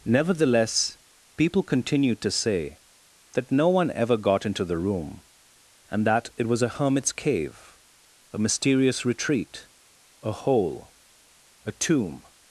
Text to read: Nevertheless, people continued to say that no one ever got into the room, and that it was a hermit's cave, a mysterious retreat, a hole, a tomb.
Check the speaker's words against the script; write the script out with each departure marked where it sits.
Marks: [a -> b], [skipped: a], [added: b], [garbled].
Nevertheless, people continued to say that no one ever got into the room, and that it was a hermit's cave, a mysterious retreat, a hole, a tomb.